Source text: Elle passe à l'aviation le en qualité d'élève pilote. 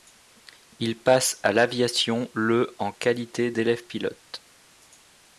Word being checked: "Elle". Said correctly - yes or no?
no